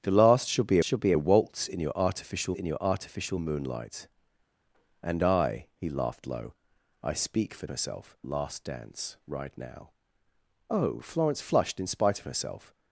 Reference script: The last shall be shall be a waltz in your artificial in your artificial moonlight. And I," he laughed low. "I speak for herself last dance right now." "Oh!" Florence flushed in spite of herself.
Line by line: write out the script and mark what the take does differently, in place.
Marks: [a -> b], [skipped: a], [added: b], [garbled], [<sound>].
The last shall be shall be a waltz in your artificial in your artificial moonlight. And I," he laughed low. "I speak for herself last dance right now." "Oh!" Florence flushed in spite of herself.